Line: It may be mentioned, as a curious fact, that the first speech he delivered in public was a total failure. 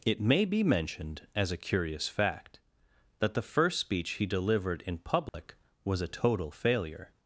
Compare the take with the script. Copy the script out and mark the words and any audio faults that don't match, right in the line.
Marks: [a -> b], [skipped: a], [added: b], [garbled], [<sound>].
It may be mentioned, as a curious fact, that the first speech he delivered in public [dropout] was a total failure.